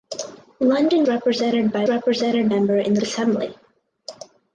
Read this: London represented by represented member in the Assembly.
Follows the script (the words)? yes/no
yes